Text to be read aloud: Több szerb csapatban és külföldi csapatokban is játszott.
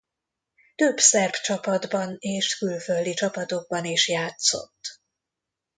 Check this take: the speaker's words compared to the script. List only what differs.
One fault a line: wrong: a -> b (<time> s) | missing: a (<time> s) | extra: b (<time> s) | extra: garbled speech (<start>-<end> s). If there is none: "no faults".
no faults